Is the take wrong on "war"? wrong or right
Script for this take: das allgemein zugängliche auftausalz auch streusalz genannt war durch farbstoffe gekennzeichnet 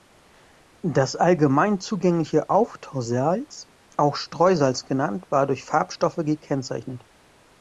right